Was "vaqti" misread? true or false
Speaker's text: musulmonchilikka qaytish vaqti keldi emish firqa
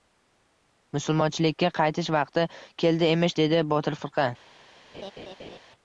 false